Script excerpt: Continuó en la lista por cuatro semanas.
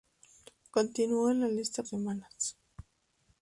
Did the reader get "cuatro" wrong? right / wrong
wrong